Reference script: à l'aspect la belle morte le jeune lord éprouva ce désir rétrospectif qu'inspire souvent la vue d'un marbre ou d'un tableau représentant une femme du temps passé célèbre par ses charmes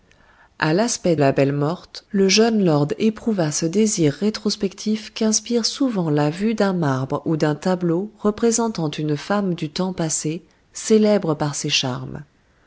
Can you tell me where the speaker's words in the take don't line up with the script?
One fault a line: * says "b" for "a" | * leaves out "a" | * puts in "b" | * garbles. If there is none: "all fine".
all fine